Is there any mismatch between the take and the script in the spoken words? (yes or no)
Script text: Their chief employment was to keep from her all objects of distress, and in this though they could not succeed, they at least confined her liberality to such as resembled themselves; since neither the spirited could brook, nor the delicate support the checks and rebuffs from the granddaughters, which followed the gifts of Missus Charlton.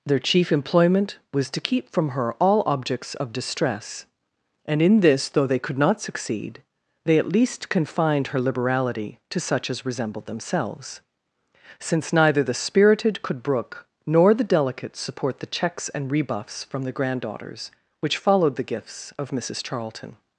no